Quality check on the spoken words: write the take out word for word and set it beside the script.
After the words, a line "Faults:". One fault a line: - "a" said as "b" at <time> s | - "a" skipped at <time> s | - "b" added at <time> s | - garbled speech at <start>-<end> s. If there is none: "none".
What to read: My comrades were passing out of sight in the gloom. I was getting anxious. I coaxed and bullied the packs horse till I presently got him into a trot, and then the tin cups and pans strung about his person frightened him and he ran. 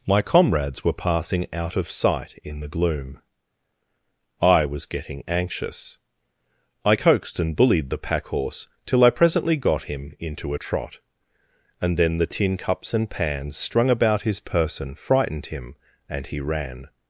My comrades were passing out of sight in the gloom. I was getting anxious. I coaxed and bullied the pack horse till I presently got him into a trot, and then the tin cups and pans strung about his person frightened him and he ran.
Faults:
- "packs" said as "pack" at 8.0 s